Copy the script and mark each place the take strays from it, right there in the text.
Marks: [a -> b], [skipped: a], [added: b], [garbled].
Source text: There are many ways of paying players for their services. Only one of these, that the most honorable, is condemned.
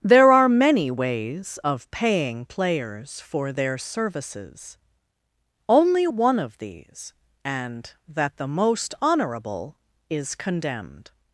There are many ways of paying players for their services. Only one of these, [added: and] that the most honorable, is condemned.